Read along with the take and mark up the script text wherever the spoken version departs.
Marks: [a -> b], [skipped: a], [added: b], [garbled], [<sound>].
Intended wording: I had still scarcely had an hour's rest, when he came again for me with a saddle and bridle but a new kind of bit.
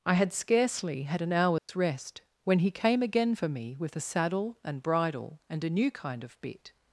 I had [skipped: still] scarcely had an hour's [dropout] rest, when he came again for me with a saddle and bridle [but -> and] a new kind of bit.